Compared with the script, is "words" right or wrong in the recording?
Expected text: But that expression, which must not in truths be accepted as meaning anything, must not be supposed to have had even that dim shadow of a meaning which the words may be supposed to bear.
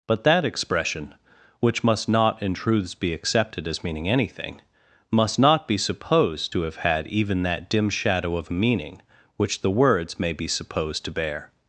right